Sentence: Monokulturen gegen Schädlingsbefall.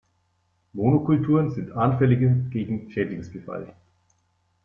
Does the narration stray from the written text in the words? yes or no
yes